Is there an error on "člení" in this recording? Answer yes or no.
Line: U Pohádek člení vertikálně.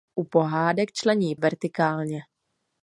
no